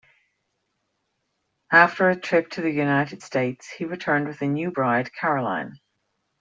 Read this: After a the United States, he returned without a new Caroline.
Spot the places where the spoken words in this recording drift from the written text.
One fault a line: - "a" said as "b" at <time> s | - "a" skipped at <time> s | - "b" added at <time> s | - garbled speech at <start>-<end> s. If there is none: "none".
- "trip to" added at 2.1 s
- "without" said as "with" at 4.3 s
- "bride" added at 4.7 s